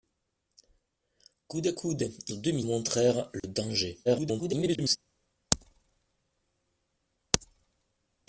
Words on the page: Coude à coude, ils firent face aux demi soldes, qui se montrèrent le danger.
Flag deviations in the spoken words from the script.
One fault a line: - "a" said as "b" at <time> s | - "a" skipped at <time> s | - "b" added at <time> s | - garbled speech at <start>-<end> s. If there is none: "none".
- "firent face" skipped at 2.3 s
- "soldes qui se" skipped at 2.7 s
- garbled speech at 4.1-5.0 s